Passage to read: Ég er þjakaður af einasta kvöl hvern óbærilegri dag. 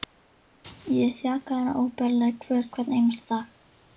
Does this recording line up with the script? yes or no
no